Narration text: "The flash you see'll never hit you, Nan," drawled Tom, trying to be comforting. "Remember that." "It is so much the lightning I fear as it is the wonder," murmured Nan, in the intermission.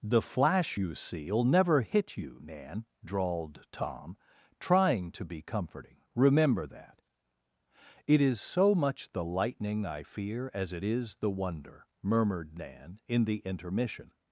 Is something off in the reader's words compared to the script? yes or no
no